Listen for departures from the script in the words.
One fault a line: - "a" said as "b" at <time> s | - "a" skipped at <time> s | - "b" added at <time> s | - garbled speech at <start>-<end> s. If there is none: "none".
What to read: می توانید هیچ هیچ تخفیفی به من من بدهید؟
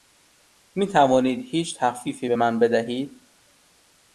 - "هیچ" skipped at 1.8 s
- "من" skipped at 2.6 s